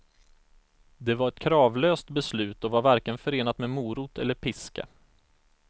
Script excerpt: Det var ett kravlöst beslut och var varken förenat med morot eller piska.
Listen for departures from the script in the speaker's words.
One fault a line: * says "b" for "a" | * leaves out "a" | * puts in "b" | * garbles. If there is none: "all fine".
all fine